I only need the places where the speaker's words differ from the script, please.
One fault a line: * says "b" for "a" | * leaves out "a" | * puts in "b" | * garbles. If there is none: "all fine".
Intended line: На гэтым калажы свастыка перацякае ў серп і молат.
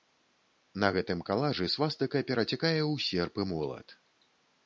all fine